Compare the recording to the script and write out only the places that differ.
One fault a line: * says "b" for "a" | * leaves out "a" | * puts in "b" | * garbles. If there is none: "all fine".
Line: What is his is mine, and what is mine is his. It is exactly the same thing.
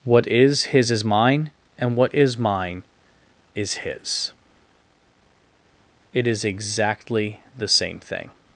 all fine